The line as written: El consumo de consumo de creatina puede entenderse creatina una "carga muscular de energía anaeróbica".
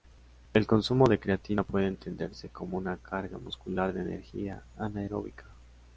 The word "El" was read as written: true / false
true